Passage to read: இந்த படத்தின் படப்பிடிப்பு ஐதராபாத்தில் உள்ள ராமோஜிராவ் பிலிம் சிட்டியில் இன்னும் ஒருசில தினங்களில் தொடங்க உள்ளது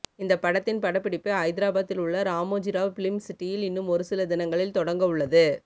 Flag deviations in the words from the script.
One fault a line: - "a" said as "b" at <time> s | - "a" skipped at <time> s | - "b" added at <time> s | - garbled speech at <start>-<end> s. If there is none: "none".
none